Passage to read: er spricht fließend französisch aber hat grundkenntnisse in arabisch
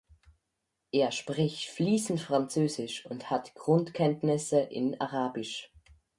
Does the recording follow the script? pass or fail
fail